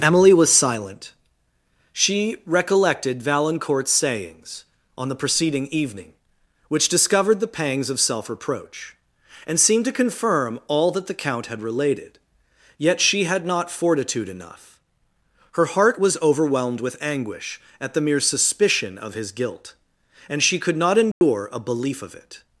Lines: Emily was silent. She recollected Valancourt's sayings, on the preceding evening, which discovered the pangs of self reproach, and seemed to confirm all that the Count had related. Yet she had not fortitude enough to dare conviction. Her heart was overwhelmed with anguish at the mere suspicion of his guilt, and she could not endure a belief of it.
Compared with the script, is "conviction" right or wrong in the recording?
wrong